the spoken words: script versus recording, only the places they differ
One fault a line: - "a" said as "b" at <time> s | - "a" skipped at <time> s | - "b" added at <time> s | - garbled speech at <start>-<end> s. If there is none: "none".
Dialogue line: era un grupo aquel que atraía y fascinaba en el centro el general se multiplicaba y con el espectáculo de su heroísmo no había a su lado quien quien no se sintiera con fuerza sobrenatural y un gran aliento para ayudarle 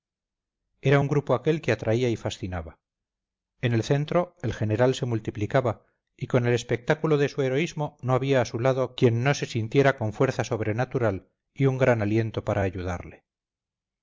- "quien" skipped at 9.2 s